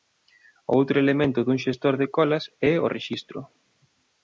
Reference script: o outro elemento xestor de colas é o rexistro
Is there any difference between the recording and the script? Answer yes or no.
yes